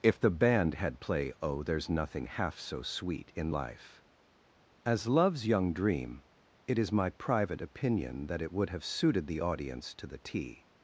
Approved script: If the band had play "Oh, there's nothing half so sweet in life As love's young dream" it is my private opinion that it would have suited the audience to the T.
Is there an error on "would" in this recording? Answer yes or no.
no